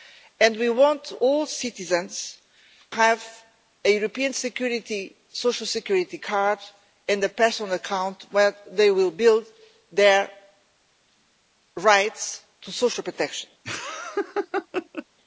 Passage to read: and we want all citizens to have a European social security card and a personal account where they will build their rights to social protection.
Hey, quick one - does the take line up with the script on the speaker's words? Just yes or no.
no